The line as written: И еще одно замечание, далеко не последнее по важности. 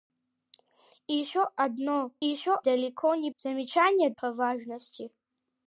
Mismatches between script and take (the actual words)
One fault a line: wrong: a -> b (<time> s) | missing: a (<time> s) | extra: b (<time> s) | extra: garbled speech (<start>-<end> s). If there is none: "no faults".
wrong: замечание -> еще (2.2 s)
wrong: последнее -> замечание (3.3 s)